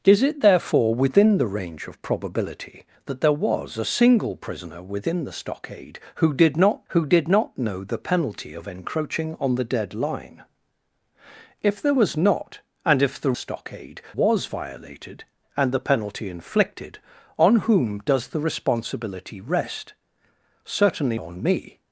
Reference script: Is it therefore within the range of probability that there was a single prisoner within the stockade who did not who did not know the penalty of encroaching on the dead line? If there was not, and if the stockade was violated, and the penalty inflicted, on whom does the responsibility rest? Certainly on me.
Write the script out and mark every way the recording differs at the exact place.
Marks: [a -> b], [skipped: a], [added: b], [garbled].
Is it therefore within the range of probability that there was a single prisoner within the stockade who did not who did not know the penalty of encroaching on the dead line? If there was not, and if the stockade was violated, and the penalty inflicted, on whom does the responsibility rest? Certainly on me.